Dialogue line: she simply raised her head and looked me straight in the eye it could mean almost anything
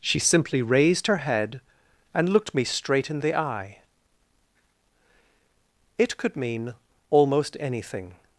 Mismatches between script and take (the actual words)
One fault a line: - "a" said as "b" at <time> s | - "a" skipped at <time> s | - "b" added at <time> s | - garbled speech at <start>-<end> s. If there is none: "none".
none